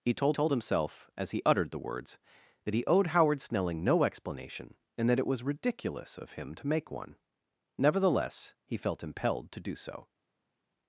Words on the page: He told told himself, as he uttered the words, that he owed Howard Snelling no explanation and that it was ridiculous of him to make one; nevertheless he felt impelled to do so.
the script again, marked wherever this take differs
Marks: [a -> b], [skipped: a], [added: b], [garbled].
He told told himself, as he uttered the words, that he owed Howard Snelling no explanation and that it was ridiculous of him to make one; nevertheless he felt impelled to do so.